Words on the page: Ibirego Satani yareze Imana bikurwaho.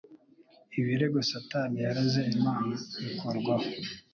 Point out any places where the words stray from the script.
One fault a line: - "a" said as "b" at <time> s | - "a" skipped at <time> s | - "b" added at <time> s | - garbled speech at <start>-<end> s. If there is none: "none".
none